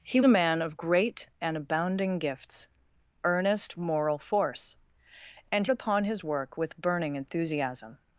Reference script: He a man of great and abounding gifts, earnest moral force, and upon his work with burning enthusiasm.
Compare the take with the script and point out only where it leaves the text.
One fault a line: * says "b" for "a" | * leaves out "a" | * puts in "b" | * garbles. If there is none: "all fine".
all fine